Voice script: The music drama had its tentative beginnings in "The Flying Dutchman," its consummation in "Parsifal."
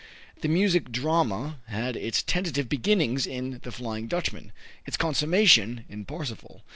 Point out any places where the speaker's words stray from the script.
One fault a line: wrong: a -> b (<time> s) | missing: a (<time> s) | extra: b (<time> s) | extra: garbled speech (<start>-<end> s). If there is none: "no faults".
no faults